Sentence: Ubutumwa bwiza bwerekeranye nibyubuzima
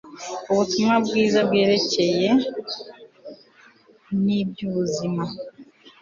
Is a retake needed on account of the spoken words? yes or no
no